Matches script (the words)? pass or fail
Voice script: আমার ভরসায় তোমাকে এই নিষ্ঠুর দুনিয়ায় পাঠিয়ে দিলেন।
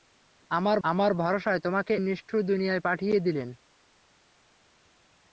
fail